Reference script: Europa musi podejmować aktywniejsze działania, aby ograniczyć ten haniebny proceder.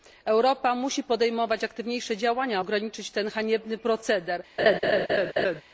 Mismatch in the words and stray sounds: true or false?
true